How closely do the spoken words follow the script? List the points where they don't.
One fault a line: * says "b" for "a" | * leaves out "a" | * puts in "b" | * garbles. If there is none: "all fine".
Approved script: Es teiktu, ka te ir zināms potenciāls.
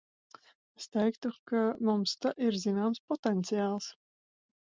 * puts in "mums"